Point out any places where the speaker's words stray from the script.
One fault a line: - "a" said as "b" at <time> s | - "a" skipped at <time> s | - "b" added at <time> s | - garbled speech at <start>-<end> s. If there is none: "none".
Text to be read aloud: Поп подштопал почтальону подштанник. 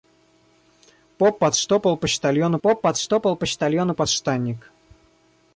- "поп подштопал почтальону" added at 2.6 s